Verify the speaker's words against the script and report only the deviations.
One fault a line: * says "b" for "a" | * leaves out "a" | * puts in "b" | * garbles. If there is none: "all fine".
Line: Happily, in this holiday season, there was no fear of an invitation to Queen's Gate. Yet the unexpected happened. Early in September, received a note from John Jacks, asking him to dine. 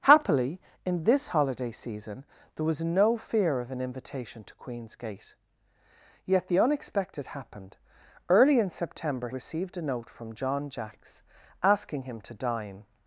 all fine